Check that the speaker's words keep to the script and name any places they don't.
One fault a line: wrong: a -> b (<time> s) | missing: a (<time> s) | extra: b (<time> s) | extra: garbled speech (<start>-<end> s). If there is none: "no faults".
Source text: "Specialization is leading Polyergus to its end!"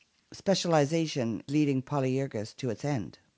missing: is (1.4 s)